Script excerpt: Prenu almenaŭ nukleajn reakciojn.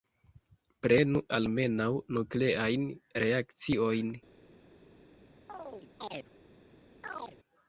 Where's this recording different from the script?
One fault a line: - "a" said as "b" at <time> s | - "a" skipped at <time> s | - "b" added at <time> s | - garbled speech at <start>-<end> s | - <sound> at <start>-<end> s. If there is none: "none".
- chirp at 5.5-6.3 s
- chirp at 7.0-7.4 s